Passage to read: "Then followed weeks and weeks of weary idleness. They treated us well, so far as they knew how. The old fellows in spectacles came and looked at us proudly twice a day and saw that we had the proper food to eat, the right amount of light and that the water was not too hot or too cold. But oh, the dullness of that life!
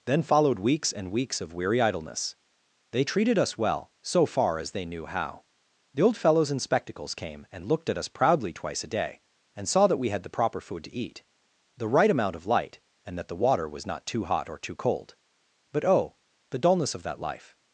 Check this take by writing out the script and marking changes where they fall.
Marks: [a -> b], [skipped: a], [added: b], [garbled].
"Then followed weeks and weeks of weary idleness. They treated us well, so far as they knew how. The old fellows in spectacles came and looked at us proudly twice a day and saw that we had the proper food to eat, the right amount of light and that the water was not too hot or too cold. But oh, the dullness of that life!